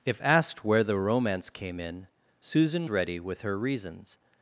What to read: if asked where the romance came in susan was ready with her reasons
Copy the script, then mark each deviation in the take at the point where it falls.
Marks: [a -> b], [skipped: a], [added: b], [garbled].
if asked where the romance came in susan [skipped: was] ready with her reasons